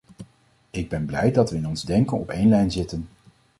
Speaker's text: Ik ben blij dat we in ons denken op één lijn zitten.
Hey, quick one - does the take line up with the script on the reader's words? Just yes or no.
yes